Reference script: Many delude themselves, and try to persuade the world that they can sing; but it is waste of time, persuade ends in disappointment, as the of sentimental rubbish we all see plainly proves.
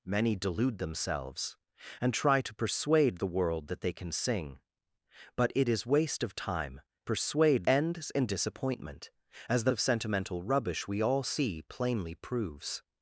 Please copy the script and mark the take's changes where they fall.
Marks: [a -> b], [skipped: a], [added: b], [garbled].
Many delude themselves, and try to persuade the world that they can sing; but it is waste of time, persuade ends in disappointment, as the of sentimental rubbish we all see plainly proves.